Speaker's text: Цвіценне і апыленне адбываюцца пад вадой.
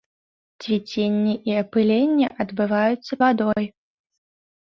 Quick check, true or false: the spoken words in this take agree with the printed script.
false